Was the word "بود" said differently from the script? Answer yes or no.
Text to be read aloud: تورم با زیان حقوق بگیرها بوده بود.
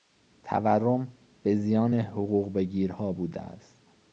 yes